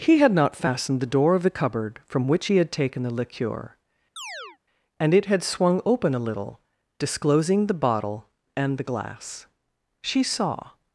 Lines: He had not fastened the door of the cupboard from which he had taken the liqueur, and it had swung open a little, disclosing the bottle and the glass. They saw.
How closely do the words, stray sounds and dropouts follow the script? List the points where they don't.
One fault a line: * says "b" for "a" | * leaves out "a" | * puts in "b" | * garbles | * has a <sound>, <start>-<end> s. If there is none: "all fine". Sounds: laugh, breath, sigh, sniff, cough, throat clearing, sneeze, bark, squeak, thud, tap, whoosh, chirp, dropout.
* has a chirp, 4.2-4.6 s
* says "She" for "They"